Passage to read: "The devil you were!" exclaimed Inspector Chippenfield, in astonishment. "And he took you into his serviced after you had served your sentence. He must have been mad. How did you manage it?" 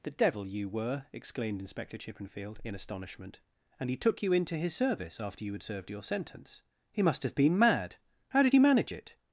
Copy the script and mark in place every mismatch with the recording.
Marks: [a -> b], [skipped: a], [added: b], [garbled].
"The devil you were!" exclaimed Inspector Chippenfield, in astonishment. "And he took you into his [serviced -> service] after you had served your sentence. He must have been mad. How did you manage it?"